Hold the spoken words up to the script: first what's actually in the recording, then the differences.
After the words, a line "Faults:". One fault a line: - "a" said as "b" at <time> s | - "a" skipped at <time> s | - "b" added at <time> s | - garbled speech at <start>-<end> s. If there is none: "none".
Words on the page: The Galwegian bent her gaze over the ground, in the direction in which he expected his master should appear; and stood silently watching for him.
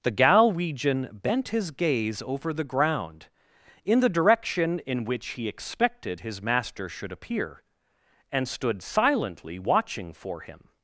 The Galwegian bent his gaze over the ground, in the direction in which he expected his master should appear; and stood silently watching for him.
Faults:
- "her" said as "his" at 1.5 s